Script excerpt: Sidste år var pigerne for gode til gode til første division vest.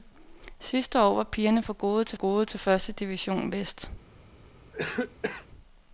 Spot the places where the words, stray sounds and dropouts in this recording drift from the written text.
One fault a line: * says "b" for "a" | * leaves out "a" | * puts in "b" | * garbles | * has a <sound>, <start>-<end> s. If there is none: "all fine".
* has a cough, 4.7-5.5 s